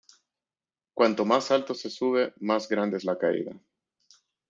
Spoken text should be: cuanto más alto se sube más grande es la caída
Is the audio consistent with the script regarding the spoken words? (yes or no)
yes